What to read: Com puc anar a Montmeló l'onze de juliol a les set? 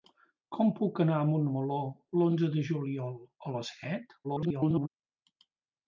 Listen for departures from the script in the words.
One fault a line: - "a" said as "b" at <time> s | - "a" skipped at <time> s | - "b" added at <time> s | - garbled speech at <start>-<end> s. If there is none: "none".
- garbled speech at 4.2-4.9 s